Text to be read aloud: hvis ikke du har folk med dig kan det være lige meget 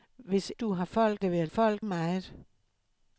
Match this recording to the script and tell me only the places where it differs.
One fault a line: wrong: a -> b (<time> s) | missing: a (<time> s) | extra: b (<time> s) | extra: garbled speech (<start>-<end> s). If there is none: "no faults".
missing: ikke (0.5 s)
missing: med dig kan (1.2 s)
wrong: lige -> folk (1.4 s)